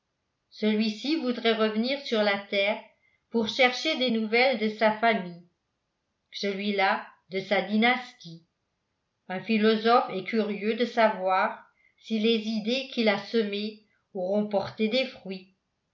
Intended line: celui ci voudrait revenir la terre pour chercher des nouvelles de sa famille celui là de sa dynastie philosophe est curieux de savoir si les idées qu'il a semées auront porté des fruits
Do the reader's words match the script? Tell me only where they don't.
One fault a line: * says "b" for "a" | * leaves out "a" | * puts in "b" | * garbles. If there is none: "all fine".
* puts in "sur"
* puts in "un"